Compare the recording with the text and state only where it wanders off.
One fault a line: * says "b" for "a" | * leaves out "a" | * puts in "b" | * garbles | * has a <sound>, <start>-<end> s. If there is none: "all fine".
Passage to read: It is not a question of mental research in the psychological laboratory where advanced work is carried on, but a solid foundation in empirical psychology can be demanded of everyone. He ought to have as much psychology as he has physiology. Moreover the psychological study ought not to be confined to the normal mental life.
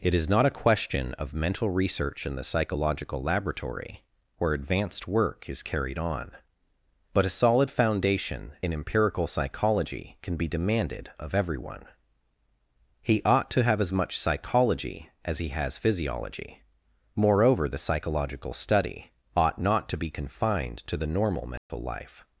* has a dropout, 21.6-21.7 s